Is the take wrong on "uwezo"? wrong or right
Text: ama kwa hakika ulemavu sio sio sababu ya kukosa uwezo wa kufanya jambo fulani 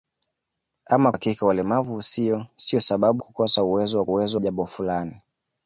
right